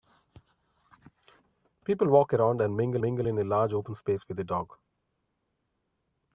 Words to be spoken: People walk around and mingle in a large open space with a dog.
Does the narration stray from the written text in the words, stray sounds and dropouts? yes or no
yes